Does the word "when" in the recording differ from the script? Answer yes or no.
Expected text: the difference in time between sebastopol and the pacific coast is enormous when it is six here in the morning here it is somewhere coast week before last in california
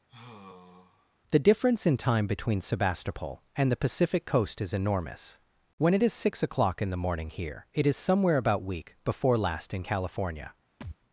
no